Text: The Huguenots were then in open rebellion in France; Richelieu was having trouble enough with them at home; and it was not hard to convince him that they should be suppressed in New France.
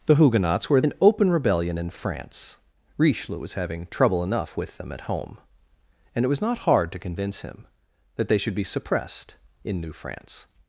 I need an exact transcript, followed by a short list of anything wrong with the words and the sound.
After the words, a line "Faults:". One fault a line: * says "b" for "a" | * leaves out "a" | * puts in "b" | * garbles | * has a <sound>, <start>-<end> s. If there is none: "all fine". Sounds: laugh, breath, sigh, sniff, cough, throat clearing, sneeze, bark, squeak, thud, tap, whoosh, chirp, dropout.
The Huguenots were in open rebellion in France; Richelieu was having trouble enough with them at home; and it was not hard to convince him that they should be suppressed in New France.
Faults:
* leaves out "then"